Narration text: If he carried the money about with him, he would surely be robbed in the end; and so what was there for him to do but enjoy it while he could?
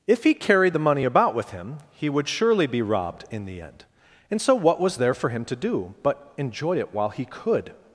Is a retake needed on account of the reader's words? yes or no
no